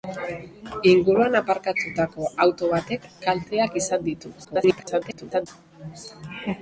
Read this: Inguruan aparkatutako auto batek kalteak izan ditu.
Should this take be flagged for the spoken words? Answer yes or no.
yes